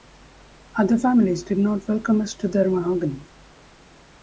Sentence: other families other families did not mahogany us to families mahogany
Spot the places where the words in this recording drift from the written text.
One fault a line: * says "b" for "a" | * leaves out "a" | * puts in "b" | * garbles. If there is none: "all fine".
* leaves out "other families"
* says "welcome" for "mahogany"
* says "their" for "families"